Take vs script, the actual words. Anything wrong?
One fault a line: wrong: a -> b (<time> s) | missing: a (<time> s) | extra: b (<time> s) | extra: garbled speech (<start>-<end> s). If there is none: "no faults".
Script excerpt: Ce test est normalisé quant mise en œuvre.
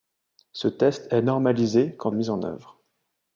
no faults